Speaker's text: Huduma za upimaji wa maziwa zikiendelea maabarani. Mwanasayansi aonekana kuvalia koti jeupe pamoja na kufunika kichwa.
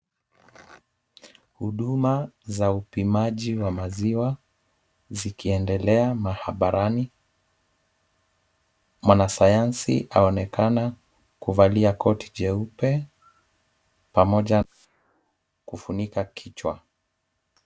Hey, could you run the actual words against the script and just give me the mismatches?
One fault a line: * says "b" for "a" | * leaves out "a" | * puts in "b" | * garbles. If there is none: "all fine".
all fine